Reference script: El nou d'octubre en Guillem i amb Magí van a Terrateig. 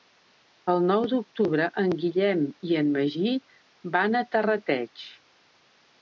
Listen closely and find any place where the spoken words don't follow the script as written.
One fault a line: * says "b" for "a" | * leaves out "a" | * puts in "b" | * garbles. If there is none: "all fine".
* says "en" for "amb"